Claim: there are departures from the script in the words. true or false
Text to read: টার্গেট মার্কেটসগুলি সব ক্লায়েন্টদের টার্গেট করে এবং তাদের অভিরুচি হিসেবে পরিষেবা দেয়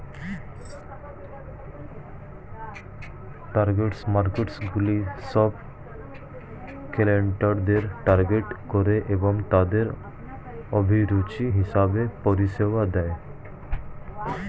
false